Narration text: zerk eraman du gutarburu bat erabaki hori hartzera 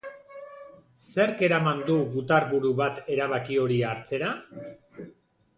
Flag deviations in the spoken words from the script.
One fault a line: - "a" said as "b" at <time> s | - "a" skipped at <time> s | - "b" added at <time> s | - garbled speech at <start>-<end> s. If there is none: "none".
none